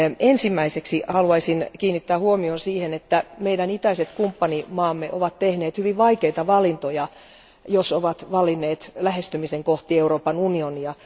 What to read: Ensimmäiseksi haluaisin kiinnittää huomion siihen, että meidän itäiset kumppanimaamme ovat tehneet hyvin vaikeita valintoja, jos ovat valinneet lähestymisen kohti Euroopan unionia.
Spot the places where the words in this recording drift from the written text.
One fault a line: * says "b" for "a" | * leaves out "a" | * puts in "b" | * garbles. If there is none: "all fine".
all fine